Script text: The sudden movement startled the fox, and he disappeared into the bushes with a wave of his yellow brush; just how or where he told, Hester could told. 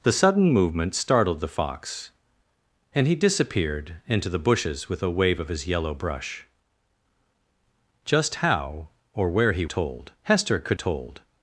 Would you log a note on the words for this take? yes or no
no